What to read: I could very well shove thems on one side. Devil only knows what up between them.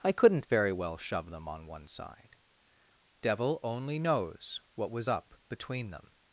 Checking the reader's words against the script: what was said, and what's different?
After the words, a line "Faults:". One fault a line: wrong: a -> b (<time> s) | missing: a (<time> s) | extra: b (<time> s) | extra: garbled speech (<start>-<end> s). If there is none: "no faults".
I couldn't very well shove them on one side. Devil only knows what was up between them.
Faults:
wrong: could -> couldn't (0.1 s)
wrong: thems -> them (1.3 s)
extra: was (4.9 s)